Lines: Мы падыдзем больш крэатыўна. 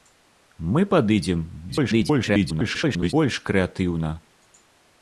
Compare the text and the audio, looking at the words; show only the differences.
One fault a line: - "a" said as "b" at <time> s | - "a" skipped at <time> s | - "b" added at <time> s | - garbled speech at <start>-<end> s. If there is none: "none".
- garbled speech at 1.7-3.1 s